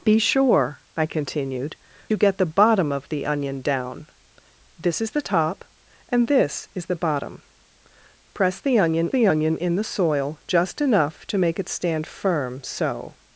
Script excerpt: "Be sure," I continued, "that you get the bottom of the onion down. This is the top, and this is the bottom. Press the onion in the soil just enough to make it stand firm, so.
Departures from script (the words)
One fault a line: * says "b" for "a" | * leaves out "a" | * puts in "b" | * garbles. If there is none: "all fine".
* leaves out "that"
* puts in "the onion"